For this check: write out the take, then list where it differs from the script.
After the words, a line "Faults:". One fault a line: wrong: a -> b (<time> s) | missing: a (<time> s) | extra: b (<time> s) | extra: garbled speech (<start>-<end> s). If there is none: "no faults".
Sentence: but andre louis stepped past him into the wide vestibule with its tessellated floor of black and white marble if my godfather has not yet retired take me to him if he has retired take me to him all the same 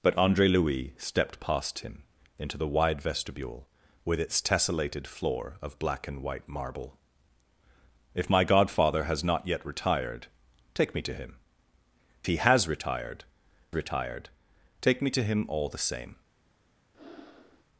but andre louis stepped past him into the wide vestibule with its tessellated floor of black and white marble if my godfather has not yet retired take me to him he has retired retired take me to him all the same
Faults:
missing: if (11.4 s)
extra: retired (13.7 s)